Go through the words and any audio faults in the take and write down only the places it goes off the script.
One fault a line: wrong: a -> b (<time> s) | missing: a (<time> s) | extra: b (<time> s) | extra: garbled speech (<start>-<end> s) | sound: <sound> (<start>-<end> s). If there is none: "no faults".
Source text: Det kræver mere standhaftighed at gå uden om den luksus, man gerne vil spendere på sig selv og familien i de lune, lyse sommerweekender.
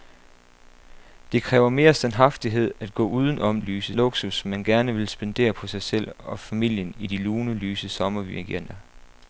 wrong: den -> lyse (3.6 s)